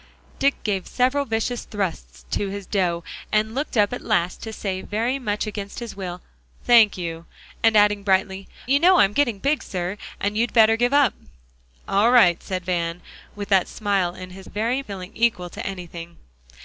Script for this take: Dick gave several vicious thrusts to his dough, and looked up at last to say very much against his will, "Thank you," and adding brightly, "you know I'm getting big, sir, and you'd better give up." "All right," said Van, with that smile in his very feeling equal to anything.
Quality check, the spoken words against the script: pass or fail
pass